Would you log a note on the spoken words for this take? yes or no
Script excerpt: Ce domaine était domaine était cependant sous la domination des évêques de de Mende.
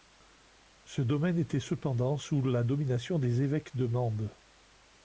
yes